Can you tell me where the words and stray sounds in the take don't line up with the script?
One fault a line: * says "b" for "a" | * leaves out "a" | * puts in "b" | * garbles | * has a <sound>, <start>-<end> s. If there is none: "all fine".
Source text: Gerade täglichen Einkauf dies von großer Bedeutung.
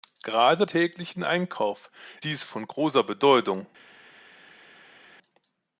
all fine